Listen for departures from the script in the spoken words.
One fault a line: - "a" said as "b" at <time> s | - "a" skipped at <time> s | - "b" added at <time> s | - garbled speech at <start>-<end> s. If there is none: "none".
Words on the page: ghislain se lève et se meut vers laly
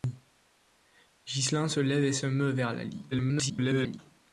- garbled speech at 3.1-4.0 s